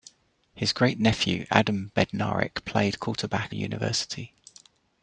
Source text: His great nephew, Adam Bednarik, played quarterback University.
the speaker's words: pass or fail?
pass